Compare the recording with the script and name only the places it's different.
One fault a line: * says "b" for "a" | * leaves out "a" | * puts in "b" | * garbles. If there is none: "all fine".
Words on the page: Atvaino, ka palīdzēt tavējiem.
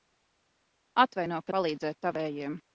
all fine